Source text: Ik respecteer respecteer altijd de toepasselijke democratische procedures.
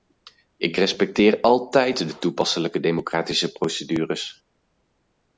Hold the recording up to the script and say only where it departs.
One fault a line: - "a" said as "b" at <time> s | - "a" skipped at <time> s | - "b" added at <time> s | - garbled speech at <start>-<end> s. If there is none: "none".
- "respecteer" skipped at 1.4 s